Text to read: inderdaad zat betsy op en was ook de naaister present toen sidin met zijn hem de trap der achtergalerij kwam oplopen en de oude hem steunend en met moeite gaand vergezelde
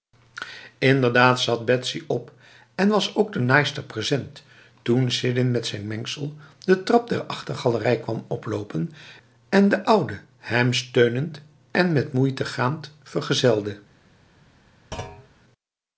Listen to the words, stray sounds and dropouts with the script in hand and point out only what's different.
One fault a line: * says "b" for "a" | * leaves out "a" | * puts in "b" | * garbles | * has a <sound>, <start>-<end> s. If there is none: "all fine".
* says "mengsel" for "hem"
* has a thud, 14.9-15.3 s